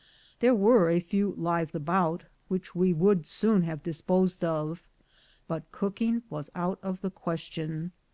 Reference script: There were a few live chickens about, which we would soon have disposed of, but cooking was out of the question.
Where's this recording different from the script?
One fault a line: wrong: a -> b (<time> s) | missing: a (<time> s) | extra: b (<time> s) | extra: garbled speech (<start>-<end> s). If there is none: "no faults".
missing: chickens (1.8 s)